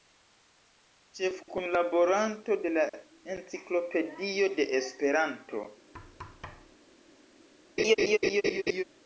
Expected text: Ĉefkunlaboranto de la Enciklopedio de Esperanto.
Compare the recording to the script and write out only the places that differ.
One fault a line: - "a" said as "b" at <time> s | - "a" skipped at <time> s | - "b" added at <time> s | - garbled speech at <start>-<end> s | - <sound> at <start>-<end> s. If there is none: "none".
- thud at 5.9-6.8 s
- laugh at 7.8-8.8 s